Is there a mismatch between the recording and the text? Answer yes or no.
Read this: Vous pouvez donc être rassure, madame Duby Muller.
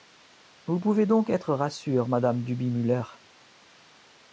no